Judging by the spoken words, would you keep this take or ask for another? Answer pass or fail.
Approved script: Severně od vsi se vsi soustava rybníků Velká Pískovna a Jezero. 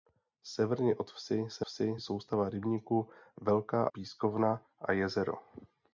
pass